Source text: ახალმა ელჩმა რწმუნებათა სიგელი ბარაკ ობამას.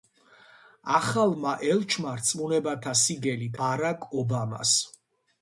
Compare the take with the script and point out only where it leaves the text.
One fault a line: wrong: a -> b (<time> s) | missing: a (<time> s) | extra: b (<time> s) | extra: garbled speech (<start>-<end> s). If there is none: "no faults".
no faults